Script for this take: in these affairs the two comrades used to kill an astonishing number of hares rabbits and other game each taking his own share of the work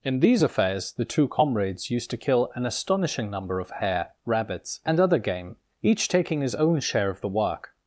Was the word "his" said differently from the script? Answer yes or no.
no